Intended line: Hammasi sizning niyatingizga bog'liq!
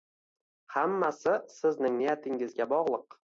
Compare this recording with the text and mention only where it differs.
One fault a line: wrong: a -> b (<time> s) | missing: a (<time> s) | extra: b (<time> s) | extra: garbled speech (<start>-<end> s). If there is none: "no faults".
no faults